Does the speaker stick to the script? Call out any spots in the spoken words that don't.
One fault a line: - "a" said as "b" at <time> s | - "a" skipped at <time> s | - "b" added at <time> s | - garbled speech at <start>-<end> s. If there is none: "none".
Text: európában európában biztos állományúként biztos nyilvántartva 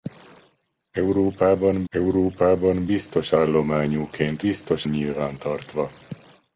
none